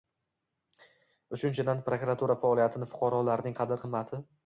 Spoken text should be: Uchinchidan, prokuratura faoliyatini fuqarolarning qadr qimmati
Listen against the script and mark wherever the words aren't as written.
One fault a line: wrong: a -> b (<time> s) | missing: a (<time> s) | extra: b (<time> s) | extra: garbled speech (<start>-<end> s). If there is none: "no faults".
no faults